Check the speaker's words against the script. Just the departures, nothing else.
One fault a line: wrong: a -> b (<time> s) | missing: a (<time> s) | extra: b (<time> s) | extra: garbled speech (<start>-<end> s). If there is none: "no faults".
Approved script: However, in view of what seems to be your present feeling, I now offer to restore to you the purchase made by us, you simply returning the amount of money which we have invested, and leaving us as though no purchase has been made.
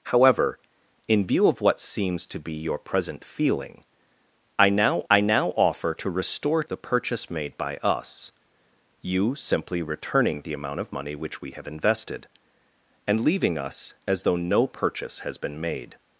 extra: I now (5.1 s)
missing: to you (6.6 s)